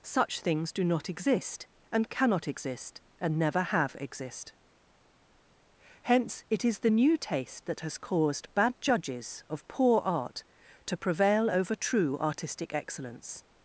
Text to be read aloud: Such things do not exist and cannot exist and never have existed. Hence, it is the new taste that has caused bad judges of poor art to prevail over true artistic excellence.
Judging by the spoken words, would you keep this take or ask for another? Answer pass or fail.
fail